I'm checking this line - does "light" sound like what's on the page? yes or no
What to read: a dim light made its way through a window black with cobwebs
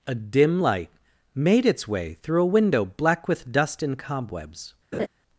yes